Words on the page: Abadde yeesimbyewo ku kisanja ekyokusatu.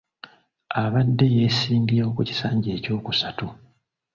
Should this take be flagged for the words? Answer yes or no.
no